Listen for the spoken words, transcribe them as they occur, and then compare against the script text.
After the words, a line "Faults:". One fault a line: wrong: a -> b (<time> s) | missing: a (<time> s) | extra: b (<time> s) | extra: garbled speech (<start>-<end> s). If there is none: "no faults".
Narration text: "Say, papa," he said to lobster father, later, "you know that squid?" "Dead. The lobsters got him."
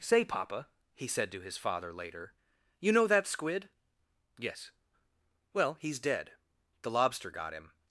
"Say, papa," he said to his father, later, "you know that squid?" "Yes." "Well, he's dead. The lobster got him."
Faults:
wrong: lobster -> his (1.4 s)
extra: Yes Well he's (4.4 s)
wrong: lobsters -> lobster (6.9 s)